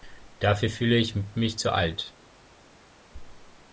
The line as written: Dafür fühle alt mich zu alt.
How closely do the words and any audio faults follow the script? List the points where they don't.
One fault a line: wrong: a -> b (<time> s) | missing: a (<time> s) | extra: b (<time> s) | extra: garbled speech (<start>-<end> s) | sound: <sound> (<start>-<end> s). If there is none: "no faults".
wrong: alt -> ich (1.0 s)